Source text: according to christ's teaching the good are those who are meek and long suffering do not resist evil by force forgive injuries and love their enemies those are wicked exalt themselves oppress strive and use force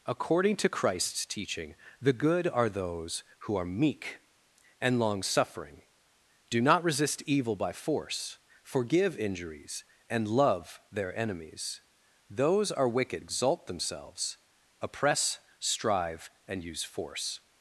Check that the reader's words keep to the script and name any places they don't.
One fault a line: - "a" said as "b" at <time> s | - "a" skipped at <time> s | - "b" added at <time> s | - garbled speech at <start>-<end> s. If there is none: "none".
none